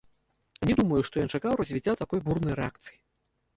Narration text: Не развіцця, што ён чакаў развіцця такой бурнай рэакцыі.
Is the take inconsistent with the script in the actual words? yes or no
yes